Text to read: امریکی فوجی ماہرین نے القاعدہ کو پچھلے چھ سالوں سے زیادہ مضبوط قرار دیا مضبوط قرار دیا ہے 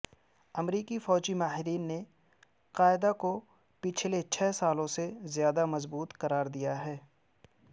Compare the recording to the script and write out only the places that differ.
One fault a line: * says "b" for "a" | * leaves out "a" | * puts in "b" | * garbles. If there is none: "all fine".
* leaves out "مضبوط قرار دیا"